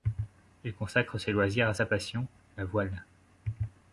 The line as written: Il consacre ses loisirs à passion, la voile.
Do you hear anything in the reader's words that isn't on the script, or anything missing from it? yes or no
yes